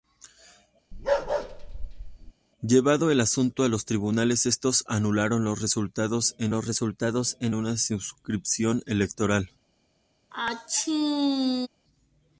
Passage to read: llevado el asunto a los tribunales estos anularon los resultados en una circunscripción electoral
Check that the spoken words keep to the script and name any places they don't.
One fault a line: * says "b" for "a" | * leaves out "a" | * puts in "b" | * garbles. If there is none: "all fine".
* puts in "los resultados en"